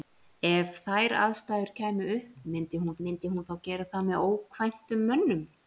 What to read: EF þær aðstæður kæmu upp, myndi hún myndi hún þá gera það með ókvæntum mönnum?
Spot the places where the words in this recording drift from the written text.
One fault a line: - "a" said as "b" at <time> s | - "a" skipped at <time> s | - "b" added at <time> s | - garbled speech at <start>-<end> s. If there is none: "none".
none